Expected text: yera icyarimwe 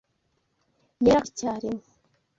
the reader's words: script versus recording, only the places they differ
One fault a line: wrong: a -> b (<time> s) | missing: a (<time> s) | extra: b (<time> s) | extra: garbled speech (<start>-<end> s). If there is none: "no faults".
no faults